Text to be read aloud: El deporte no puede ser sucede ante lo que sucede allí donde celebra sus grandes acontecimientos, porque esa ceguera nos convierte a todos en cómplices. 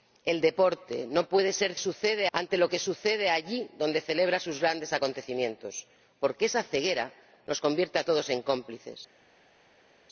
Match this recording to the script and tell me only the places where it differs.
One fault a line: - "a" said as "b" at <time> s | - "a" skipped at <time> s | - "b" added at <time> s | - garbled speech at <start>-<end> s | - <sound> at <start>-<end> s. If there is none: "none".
none